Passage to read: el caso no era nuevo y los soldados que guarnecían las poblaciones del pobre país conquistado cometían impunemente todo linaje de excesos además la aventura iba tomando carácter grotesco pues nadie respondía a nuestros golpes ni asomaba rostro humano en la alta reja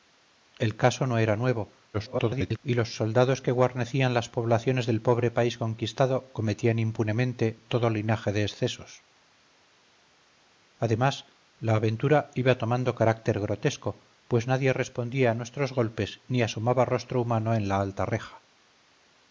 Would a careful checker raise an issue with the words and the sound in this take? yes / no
yes